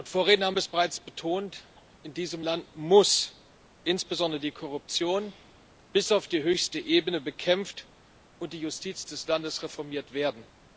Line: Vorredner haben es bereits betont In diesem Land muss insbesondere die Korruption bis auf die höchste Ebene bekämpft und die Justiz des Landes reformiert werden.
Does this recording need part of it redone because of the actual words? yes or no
no